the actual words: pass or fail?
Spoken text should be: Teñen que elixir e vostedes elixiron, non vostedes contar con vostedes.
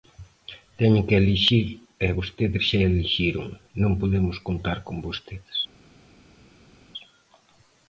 fail